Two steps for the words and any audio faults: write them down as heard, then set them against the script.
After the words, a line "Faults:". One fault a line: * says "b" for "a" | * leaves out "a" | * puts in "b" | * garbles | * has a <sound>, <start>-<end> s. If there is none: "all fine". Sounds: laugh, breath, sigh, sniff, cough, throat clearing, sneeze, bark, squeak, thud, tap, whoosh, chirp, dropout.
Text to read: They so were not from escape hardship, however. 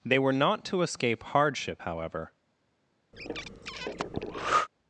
They were not to escape hardship, however.
Faults:
* leaves out "so"
* says "to" for "from"
* has a breath, 3.1-4.7 s